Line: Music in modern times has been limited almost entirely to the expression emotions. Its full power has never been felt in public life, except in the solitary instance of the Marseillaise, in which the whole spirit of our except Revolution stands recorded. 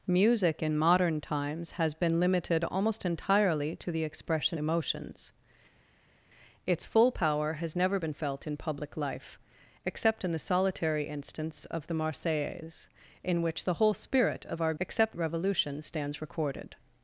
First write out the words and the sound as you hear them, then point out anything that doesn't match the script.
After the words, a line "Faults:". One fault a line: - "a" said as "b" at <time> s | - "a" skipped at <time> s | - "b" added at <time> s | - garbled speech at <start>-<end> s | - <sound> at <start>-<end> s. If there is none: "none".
Music in modern times has been limited almost entirely to the expression emotions. Its full power has never been felt in public life, except in the solitary instance of the Marseillaise, in which the whole spirit of our except Revolution stands recorded.
Faults:
none